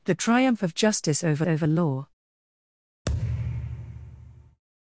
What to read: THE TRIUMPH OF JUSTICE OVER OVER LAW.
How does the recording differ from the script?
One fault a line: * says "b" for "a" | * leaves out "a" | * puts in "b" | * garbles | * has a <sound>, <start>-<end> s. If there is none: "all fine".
* has a thud, 3.1-4.6 s